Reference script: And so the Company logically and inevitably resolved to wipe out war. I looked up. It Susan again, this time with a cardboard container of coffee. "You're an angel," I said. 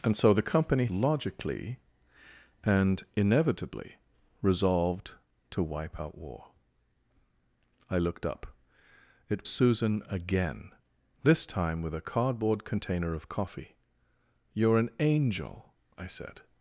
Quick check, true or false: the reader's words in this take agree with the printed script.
true